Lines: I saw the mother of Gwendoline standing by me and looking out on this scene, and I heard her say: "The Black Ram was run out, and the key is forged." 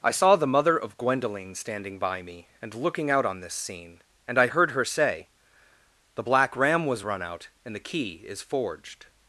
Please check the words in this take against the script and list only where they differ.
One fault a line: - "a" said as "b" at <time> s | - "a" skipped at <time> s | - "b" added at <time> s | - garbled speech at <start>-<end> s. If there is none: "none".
none